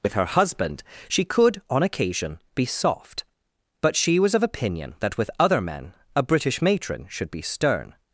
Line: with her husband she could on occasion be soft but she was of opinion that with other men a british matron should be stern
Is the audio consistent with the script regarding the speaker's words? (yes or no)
yes